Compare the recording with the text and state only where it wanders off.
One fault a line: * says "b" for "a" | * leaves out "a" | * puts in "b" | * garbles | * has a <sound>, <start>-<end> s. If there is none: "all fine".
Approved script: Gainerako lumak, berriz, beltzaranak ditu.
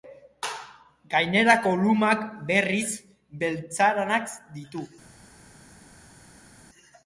all fine